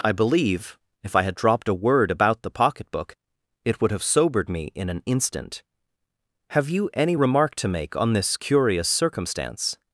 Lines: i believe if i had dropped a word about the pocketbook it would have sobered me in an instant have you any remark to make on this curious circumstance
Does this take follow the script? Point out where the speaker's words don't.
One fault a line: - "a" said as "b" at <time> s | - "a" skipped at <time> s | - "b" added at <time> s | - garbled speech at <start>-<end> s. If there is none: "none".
none